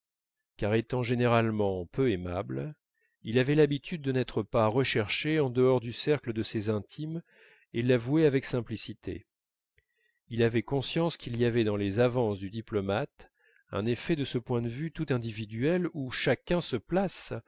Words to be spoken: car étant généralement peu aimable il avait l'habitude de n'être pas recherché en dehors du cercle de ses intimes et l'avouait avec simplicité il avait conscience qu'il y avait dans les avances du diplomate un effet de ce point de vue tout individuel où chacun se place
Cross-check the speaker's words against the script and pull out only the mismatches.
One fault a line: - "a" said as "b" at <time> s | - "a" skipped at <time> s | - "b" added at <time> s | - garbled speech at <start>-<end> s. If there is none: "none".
none